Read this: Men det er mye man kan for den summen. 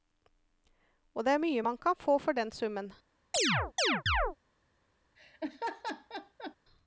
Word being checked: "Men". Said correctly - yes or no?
no